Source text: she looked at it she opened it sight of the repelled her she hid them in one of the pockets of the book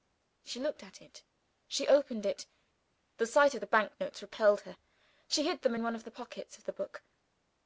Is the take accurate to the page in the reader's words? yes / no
no